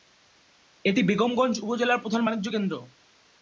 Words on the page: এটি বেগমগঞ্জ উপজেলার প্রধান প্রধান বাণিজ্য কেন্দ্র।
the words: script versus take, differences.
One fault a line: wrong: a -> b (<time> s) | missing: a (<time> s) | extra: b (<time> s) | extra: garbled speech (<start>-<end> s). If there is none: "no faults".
missing: প্রধান (2.2 s)